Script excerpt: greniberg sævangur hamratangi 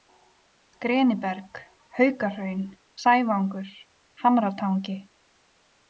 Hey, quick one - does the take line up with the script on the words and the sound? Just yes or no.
no